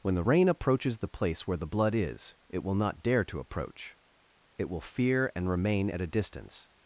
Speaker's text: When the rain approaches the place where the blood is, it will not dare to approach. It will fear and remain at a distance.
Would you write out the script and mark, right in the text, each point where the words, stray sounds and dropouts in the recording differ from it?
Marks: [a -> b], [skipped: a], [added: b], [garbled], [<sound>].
When the rain approaches the place where the blood is, it will not dare to approach. It will fear and remain at a distance.